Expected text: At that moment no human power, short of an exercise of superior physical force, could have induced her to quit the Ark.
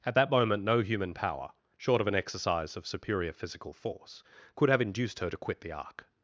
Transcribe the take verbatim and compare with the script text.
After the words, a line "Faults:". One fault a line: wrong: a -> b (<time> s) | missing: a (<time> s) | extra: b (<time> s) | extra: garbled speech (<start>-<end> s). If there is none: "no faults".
At that moment no human power, short of an exercise of superior physical force, could have induced her to quit the Ark.
Faults:
no faults